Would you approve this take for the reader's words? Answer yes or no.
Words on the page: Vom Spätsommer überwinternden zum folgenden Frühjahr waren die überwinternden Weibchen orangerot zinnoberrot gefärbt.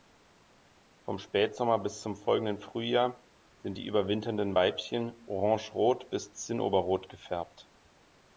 no